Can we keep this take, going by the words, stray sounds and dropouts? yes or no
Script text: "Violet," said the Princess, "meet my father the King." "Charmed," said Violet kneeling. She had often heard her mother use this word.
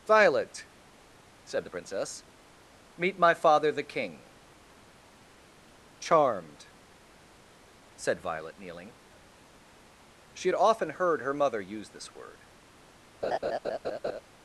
no